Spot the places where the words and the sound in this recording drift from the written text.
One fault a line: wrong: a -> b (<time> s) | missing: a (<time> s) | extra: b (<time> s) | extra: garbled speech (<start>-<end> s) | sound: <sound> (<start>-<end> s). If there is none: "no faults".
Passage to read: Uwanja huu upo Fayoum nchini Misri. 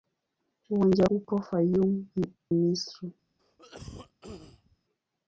missing: huu (1.1 s)
missing: nchini (2.1 s)
sound: cough (3.4-4.8 s)